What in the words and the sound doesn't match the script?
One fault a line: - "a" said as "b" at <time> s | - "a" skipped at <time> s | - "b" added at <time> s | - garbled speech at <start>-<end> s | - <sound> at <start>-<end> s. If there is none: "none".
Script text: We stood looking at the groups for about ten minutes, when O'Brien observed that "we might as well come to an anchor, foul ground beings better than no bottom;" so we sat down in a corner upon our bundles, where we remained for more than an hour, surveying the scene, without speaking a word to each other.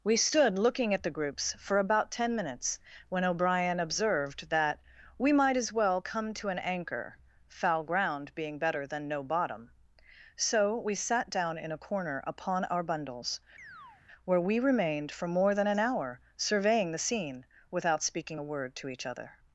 - "beings" said as "being" at 8.3 s
- chirp at 13.6-14.0 s